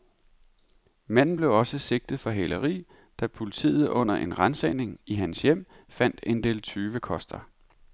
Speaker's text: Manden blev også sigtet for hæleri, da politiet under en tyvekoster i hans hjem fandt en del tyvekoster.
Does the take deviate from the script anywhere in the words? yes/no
yes